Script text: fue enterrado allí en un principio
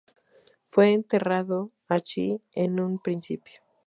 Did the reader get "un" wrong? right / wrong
right